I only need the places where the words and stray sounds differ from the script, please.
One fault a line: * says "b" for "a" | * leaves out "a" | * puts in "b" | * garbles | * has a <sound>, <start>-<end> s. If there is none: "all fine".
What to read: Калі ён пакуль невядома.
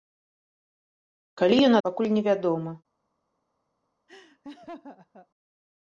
* has a laugh, 4.1-5.3 s